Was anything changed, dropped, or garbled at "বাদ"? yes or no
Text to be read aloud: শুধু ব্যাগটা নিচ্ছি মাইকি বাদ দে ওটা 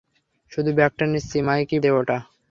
yes